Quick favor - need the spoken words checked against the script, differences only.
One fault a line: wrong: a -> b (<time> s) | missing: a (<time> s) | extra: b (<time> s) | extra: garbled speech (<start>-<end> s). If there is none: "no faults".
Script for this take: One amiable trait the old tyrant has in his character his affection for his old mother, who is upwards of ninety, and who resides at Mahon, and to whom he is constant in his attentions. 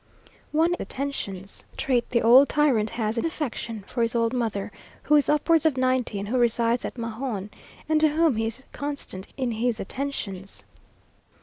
wrong: amiable -> attentions (0.8 s)
missing: his character his (3.3 s)